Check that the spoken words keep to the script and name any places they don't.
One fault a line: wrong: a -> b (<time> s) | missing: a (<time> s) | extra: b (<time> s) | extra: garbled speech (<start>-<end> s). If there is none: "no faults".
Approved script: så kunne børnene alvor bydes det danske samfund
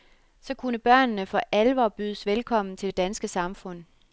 extra: for (1.2 s)
extra: velkommen til (2.3 s)